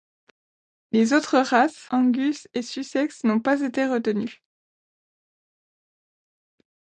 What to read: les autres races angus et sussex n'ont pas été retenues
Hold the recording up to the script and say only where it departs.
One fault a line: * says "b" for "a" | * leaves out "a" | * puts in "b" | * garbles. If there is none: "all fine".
all fine